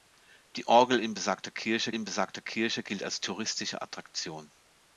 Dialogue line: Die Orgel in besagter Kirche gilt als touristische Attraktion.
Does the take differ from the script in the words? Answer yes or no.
yes